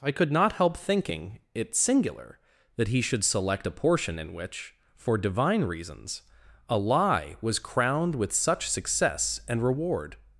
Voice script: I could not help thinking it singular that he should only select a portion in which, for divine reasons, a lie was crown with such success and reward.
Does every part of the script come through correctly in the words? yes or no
no